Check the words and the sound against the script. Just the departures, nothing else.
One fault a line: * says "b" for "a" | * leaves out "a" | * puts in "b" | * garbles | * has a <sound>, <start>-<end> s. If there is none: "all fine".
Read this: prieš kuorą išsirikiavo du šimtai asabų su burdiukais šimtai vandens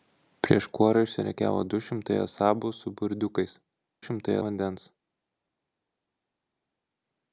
all fine